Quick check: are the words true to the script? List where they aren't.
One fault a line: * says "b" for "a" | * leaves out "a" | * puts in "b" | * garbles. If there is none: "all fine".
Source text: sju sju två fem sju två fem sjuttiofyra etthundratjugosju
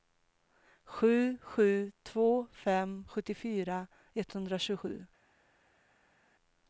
* leaves out "sju två fem"